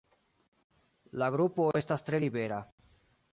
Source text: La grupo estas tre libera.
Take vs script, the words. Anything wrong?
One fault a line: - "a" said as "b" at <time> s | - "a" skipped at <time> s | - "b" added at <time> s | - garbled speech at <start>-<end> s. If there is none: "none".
none